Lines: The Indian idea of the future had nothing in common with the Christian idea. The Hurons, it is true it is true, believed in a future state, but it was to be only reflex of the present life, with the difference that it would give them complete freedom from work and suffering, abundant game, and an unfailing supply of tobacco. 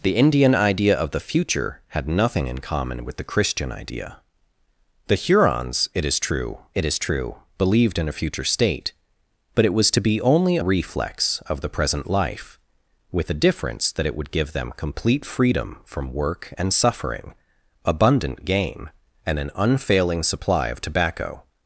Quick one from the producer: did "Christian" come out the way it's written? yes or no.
yes